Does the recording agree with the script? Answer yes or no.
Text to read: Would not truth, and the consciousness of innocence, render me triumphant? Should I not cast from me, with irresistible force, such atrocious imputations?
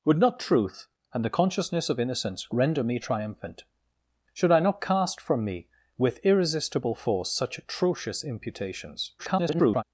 no